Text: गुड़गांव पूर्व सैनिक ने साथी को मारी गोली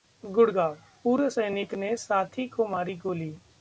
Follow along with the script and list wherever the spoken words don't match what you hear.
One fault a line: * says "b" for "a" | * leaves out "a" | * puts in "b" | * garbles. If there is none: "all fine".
all fine